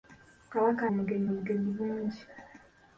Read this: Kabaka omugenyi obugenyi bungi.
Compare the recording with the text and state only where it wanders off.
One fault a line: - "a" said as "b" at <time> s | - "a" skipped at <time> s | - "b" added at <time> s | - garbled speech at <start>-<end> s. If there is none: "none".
none